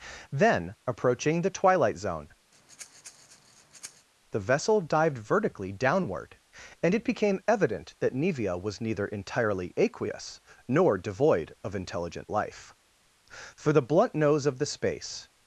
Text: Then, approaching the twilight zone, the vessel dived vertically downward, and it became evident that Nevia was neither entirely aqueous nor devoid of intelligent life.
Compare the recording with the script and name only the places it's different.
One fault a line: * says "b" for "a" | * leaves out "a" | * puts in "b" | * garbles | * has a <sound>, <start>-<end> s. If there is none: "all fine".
* has a breath, 2.5-4.1 s
* puts in "For the blunt nose of the space"